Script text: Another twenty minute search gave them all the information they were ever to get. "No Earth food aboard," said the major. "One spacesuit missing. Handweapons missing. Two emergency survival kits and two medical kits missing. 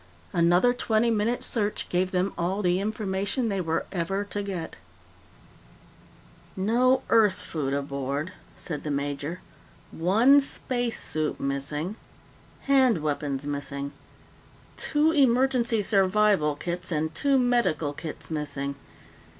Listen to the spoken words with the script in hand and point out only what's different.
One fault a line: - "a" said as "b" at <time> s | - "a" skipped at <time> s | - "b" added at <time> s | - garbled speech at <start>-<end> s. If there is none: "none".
none